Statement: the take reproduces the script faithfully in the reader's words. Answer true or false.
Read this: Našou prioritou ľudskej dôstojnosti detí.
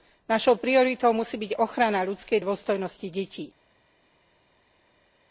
false